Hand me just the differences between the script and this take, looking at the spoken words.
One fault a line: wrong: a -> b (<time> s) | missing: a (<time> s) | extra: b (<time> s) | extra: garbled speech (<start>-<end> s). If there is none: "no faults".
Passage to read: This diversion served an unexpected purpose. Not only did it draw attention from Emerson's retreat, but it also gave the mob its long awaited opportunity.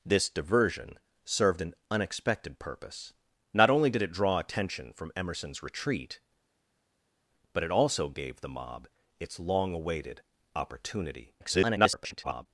extra: garbled speech (11.4-12.5 s)